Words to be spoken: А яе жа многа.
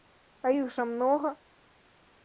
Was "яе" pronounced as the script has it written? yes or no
no